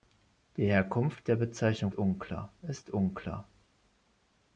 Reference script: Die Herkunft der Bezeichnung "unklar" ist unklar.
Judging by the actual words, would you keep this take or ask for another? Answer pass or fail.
pass